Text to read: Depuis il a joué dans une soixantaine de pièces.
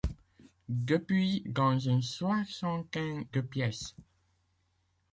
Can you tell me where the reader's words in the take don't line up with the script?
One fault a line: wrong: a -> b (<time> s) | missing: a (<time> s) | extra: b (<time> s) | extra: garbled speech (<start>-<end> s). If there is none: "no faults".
missing: il a joué (1.4 s)